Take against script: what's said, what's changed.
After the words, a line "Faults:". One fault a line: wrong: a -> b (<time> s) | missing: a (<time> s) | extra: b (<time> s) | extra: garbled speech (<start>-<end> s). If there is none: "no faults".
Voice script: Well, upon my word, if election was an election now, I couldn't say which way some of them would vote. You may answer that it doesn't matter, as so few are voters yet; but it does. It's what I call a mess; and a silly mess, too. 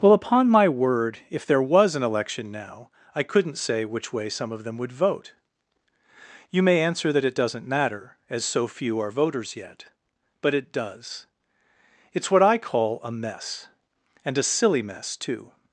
Well, upon my word, if there was an election now, I couldn't say which way some of them would vote. You may answer that it doesn't matter, as so few are voters yet; but it does. It's what I call a mess; and a silly mess, too.
Faults:
wrong: election -> there (1.4 s)